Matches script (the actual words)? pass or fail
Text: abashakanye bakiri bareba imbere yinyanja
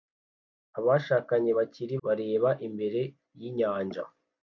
pass